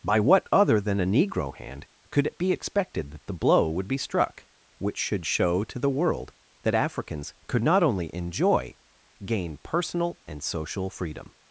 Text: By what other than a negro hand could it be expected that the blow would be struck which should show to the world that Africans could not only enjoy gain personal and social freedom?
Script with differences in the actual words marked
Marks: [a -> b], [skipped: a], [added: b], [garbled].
By what other than a negro hand could it be expected that the blow would be struck which should show to the world that Africans could not only enjoy gain personal and social freedom?